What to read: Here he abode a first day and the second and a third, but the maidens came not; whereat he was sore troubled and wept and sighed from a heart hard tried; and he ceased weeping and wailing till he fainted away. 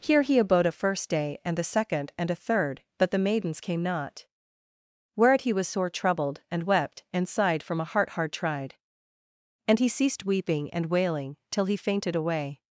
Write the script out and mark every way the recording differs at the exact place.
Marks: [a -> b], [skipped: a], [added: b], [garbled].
Here he abode a first day and the second and a third, but the maidens came not; whereat he was sore troubled and wept and sighed from a heart hard tried; and he ceased weeping and wailing till he fainted away.